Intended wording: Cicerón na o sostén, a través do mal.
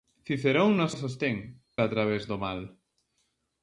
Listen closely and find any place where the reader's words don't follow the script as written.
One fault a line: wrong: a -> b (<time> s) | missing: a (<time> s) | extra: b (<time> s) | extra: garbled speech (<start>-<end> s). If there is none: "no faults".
no faults